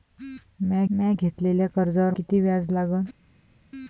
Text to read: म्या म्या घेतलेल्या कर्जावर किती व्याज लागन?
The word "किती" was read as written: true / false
true